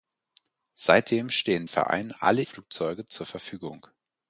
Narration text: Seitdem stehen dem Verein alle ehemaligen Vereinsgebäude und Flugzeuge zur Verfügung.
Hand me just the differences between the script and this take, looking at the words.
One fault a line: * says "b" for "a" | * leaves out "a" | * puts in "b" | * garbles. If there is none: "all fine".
* leaves out "dem"
* leaves out "ehemaligen Vereinsgebäude und"